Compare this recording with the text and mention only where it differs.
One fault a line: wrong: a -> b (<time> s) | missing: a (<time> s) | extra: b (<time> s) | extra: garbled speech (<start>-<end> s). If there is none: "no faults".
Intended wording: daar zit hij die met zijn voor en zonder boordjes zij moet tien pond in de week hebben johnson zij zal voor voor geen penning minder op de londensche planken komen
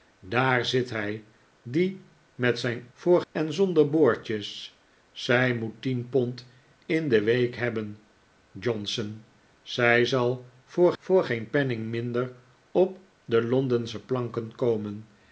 no faults